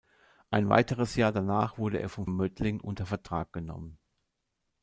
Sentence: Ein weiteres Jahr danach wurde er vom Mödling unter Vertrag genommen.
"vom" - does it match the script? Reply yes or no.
yes